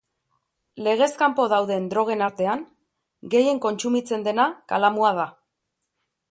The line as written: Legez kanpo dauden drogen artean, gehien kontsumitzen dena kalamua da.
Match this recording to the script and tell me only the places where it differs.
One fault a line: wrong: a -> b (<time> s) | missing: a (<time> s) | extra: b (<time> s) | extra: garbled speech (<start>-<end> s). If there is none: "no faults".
no faults